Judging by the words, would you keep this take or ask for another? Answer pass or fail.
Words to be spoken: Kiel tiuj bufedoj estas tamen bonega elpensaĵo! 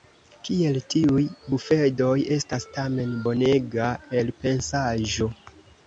pass